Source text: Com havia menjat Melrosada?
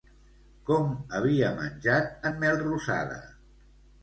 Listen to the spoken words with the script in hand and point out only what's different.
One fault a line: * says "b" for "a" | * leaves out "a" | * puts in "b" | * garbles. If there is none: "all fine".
* puts in "en"